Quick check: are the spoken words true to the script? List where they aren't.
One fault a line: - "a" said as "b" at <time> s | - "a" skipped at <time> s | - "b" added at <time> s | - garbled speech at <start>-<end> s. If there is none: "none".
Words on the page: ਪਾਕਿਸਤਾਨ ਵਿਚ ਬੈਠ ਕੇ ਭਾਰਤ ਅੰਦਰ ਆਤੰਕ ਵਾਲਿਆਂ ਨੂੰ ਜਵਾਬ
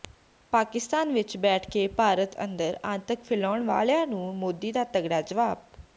- "ਫੈਲਾਉਣ" added at 3.2 s
- "ਮੋਦੀ ਦਾ ਤਗੜਾ" added at 4.4 s